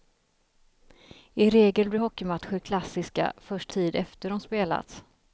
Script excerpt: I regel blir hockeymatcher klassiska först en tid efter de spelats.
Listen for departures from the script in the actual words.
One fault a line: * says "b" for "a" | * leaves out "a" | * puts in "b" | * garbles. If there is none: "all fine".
* leaves out "en"